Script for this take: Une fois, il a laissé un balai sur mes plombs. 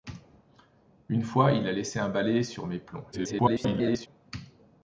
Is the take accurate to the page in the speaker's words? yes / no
no